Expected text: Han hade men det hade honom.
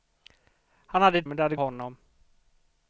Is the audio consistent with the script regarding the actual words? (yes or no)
yes